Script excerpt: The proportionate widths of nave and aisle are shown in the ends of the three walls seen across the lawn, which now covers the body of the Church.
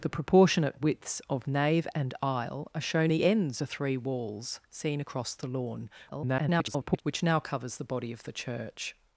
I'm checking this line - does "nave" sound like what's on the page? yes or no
yes